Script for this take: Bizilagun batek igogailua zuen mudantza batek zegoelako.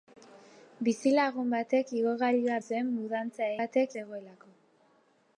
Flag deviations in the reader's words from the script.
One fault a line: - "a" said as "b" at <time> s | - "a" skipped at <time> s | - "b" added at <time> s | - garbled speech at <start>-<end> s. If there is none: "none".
none